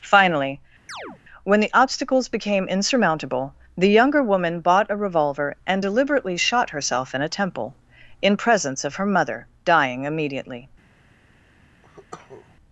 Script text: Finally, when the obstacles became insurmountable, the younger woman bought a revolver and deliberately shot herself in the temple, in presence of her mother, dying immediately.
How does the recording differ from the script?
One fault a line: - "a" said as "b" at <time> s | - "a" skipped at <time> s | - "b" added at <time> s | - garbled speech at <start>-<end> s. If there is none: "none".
- "the" said as "a" at 7.2 s